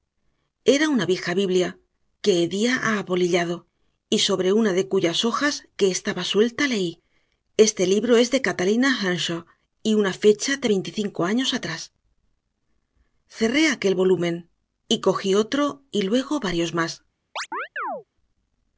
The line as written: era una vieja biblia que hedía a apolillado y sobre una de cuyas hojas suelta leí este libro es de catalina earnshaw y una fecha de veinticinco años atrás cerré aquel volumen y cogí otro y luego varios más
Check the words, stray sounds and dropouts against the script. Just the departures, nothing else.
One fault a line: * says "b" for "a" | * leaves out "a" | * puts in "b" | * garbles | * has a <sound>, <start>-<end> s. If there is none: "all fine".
* puts in "que estaba"
* has a chirp, 17.4-18.0 s